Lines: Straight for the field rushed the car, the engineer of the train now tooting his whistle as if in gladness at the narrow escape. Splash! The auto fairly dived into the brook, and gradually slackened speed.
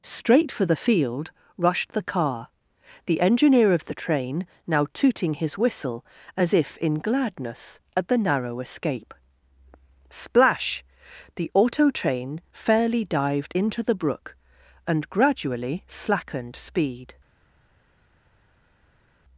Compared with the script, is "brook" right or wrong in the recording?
right